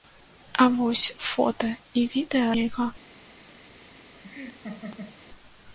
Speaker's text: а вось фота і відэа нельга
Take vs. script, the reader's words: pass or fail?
pass